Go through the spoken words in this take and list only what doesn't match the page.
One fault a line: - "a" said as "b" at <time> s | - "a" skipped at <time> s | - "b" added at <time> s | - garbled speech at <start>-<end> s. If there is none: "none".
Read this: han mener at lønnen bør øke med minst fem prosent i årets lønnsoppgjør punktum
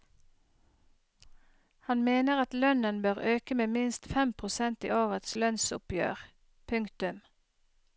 none